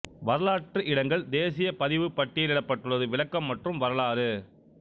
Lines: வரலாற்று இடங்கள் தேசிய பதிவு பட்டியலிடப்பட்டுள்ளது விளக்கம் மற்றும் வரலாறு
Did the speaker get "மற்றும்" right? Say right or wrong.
right